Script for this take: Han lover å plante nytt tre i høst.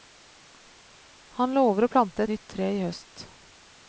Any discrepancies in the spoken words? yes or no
no